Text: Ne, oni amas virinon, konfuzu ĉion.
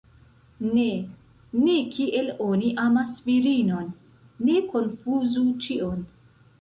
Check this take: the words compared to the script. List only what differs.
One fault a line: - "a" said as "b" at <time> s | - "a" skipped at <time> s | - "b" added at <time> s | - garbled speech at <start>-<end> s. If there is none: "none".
- "ne kiel" added at 1.6 s
- "ne" added at 4.5 s